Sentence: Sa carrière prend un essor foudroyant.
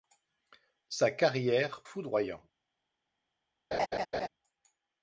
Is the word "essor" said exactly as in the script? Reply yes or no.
no